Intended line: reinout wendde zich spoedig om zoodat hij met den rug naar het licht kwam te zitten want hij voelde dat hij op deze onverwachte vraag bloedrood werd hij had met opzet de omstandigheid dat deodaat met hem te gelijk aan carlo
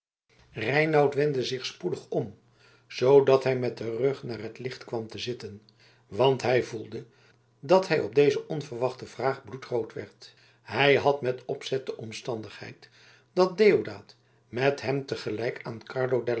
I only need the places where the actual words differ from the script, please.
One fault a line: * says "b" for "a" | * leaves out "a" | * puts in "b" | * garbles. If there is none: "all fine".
all fine